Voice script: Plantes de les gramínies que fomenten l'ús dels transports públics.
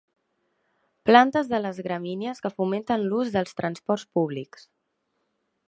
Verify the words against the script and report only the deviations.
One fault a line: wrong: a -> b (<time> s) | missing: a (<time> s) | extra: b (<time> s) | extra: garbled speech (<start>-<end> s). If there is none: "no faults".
no faults